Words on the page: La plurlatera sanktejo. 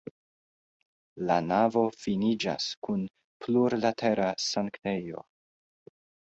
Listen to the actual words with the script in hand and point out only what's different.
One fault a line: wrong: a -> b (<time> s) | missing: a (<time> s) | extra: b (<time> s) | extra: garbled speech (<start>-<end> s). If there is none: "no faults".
extra: navo finiĝas kun (1.5 s)